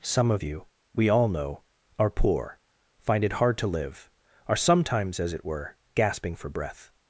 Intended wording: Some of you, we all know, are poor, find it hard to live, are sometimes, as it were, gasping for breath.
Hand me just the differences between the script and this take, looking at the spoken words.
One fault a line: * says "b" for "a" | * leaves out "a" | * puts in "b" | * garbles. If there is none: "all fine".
all fine